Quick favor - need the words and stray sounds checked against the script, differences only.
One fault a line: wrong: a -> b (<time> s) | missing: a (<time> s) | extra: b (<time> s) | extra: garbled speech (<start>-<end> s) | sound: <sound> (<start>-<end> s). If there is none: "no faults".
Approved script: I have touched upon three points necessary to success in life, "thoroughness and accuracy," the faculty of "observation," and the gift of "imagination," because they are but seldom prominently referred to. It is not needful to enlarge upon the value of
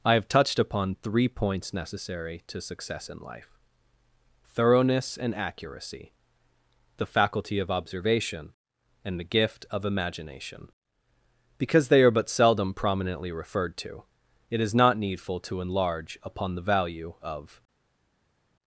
no faults